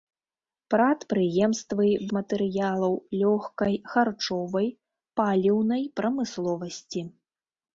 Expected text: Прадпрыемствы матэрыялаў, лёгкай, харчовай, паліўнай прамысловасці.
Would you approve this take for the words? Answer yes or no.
yes